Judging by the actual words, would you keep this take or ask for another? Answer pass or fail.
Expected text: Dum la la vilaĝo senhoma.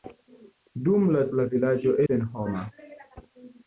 pass